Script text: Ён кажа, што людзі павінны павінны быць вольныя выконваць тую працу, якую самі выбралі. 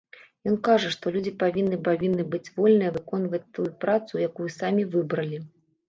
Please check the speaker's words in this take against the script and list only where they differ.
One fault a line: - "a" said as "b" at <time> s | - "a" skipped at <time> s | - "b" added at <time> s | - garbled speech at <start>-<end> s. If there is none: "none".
none